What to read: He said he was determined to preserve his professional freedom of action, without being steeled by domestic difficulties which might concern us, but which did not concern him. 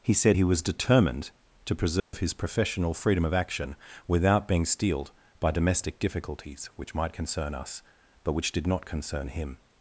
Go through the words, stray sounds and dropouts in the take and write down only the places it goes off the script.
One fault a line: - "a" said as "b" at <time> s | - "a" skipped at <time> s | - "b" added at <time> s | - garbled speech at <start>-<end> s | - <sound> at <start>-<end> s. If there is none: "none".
- dropout at 2.0-2.1 s